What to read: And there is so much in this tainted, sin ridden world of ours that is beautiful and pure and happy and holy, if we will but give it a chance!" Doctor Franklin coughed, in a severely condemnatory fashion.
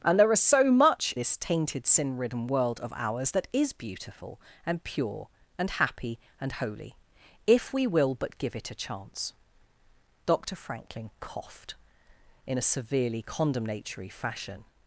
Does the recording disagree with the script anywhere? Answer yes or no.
yes